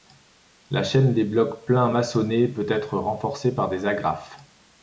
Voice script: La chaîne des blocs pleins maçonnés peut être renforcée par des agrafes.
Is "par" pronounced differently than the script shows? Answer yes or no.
no